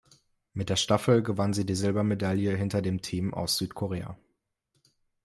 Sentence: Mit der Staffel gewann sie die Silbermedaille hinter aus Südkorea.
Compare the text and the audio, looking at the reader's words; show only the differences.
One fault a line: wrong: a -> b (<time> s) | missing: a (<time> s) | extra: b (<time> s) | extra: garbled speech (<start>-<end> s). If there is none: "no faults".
extra: dem Team (2.8 s)